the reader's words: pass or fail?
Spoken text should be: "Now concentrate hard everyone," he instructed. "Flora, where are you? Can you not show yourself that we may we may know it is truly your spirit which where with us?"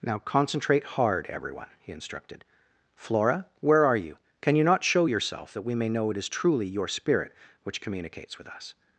fail